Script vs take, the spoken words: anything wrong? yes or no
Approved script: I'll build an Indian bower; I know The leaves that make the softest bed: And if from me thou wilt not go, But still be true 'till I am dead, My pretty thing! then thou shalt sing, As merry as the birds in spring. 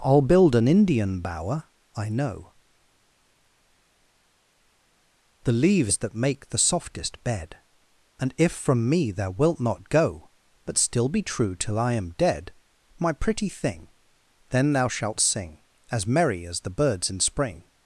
no